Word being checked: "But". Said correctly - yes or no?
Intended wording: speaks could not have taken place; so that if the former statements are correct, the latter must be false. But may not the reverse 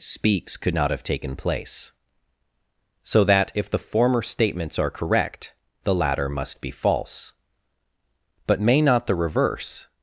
yes